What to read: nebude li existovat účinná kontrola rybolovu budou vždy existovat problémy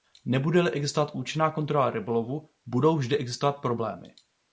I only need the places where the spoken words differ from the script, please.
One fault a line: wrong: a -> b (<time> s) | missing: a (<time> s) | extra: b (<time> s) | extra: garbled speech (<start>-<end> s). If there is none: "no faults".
no faults